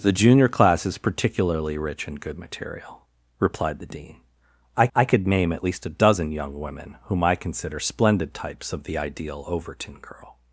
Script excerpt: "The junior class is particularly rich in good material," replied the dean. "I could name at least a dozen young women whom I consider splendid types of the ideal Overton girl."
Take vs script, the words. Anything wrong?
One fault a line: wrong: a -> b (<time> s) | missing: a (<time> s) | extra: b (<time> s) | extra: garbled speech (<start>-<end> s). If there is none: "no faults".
extra: I (4.9 s)